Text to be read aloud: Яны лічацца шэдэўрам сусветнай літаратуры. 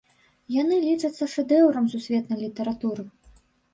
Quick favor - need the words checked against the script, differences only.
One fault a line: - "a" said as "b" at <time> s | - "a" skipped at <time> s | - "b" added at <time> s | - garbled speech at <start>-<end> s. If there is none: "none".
none